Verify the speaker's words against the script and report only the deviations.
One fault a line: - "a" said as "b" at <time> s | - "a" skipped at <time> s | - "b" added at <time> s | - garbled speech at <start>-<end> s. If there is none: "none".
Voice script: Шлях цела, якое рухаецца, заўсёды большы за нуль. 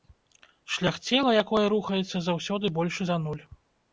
none